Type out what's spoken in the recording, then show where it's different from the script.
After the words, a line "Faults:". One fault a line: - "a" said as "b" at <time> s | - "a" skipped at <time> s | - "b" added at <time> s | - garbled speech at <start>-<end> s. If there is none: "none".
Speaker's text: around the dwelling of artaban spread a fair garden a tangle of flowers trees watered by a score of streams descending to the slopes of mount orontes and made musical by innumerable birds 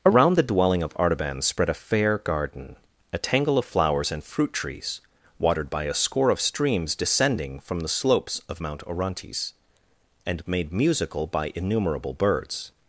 around the dwelling of artaban spread a fair garden a tangle of flowers and fruit trees watered by a score of streams descending from the slopes of mount orontes and made musical by innumerable birds
Faults:
- "and fruit" added at 4.1 s
- "to" said as "from" at 7.6 s